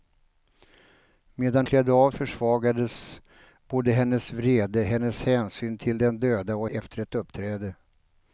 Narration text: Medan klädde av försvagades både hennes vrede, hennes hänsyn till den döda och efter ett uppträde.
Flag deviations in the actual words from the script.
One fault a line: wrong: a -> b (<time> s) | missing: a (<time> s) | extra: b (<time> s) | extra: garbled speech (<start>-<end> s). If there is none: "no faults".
no faults